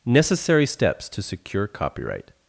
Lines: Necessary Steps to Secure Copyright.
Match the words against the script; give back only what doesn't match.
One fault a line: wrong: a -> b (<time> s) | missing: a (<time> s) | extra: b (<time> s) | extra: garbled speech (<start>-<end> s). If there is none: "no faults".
no faults